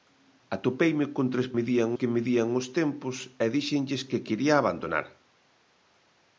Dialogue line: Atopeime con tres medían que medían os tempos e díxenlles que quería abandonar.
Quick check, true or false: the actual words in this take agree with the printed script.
true